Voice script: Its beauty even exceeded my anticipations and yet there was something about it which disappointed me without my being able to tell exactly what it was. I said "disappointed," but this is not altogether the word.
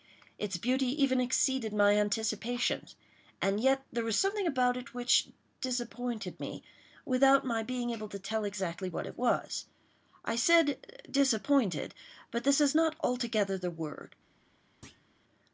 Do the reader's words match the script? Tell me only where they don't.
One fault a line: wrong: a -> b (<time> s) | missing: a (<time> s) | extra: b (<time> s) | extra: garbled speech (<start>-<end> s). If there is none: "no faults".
no faults